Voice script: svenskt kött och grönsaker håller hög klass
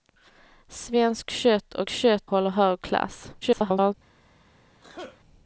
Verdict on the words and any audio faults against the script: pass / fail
fail